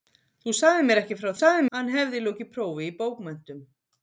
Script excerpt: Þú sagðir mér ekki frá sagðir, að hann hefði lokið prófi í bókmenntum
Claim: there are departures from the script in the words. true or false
false